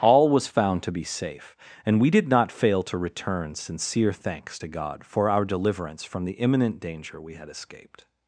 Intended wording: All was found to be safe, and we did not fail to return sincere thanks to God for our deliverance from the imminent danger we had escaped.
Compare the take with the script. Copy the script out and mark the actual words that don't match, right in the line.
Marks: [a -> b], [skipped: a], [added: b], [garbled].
All was found to be safe, and we did not fail to return sincere thanks to God for our deliverance from the imminent danger we had escaped.